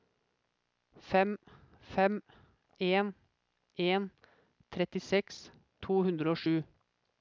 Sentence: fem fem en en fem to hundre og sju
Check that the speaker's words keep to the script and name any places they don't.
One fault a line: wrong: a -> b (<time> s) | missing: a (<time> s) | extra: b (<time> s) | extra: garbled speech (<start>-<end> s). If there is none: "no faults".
wrong: fem -> trettiseks (4.8 s)